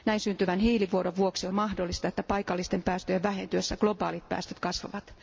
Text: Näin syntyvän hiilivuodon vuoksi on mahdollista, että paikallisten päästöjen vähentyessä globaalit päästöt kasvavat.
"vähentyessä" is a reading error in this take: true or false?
false